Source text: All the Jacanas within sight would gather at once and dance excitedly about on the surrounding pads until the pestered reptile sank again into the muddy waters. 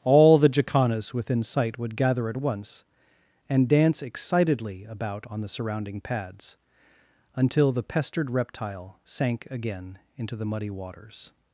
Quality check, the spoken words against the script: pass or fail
pass